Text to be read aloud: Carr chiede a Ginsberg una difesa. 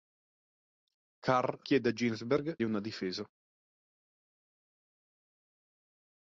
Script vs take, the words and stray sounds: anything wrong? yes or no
no